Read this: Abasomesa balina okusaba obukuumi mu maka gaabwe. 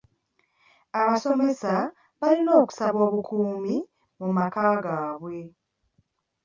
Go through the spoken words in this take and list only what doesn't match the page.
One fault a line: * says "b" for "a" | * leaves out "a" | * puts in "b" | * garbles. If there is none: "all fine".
all fine